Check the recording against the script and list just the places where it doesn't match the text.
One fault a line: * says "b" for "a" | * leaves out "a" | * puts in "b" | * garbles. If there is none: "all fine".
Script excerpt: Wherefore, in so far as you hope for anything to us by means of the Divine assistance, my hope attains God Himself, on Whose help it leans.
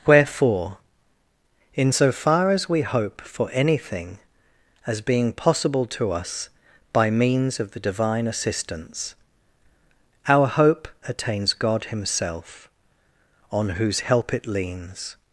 * says "we" for "you"
* puts in "as being possible"
* says "our" for "my"